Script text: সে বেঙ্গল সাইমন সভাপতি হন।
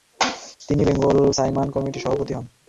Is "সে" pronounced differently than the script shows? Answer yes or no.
yes